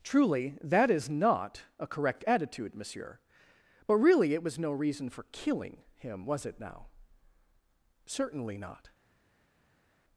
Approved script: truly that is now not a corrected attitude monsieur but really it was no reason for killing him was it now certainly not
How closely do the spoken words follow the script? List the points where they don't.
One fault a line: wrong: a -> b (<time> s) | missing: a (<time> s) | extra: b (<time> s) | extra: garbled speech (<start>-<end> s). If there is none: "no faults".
missing: now (1.1 s)
wrong: corrected -> correct (1.9 s)